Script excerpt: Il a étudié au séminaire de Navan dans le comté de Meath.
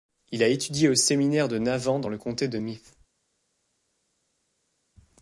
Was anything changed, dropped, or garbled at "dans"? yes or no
no